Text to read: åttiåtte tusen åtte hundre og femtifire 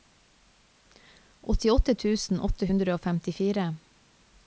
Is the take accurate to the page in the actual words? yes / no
yes